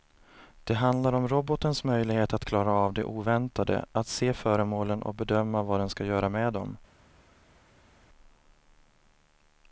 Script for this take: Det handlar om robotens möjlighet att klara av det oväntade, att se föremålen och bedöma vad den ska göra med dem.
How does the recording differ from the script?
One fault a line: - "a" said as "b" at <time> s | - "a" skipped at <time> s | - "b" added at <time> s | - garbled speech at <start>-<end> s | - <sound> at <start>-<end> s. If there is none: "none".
none